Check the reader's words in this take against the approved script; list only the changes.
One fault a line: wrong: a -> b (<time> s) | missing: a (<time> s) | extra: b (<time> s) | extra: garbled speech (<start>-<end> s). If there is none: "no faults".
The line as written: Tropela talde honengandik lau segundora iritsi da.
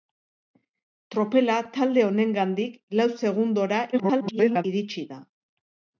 extra: garbled speech (3.9-4.6 s)